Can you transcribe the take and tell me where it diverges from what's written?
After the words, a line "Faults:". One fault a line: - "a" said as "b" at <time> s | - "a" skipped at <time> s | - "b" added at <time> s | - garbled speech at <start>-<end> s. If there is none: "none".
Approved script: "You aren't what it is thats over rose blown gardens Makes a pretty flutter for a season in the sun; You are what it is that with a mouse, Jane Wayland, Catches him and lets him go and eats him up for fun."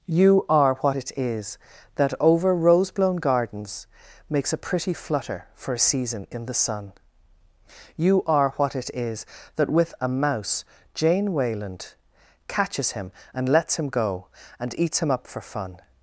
"You are what it is that over rose blown gardens Makes a pretty flutter for a season in the sun; You are what it is that with a mouse, Jane Wayland, Catches him and lets him go and eats him up for fun."
Faults:
- "aren't" said as "are" at 0.5 s
- "thats" said as "that" at 2.0 s